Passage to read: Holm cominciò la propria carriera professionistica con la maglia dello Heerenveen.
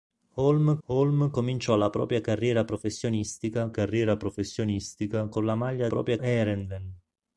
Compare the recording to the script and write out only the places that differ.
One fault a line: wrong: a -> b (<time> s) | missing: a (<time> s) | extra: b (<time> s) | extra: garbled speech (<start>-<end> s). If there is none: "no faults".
extra: holm (0.9 s)
extra: carriera professionistica (3.7 s)
wrong: dello -> propria (5.9 s)